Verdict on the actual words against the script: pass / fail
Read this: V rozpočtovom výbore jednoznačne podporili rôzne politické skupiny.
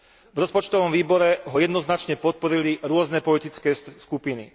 fail